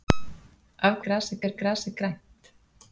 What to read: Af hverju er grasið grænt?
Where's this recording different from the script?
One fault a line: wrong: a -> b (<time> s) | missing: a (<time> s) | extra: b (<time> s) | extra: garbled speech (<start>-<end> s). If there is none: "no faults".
wrong: hverju -> grasið (1.1 s)